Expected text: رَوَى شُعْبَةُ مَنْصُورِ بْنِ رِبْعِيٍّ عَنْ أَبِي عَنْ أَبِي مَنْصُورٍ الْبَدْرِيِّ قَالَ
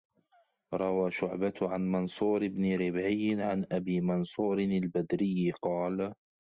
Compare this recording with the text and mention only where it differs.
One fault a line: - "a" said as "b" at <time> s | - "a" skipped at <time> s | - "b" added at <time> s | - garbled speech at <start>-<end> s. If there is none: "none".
- "عَنْ" added at 1.6 s
- "عَنْ أَبِي" skipped at 4.0 s